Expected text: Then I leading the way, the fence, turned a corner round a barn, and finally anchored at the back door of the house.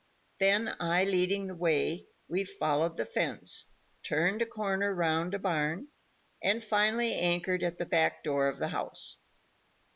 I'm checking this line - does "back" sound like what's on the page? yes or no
yes